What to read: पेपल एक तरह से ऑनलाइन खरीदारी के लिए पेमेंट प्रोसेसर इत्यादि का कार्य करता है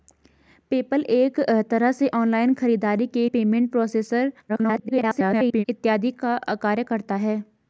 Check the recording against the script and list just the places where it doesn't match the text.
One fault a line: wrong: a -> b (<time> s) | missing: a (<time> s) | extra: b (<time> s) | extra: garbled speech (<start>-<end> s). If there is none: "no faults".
missing: लिए (3.3 s)
extra: garbled speech (4.5-5.6 s)